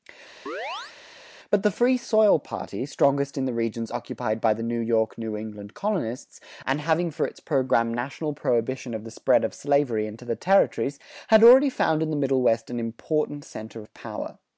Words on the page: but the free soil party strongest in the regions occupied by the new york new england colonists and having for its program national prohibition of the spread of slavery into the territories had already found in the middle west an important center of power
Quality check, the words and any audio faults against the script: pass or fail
fail